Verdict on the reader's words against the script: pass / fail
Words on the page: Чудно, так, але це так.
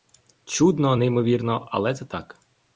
fail